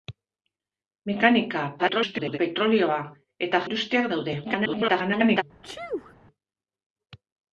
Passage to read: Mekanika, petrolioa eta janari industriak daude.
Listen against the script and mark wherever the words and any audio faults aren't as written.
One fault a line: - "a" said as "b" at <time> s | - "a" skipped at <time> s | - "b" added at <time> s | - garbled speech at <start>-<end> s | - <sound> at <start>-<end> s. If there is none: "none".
- garbled speech at 1.8-2.4 s
- "janari" skipped at 3.6 s
- garbled speech at 4.4-5.4 s
- sneeze at 5.6-6.1 s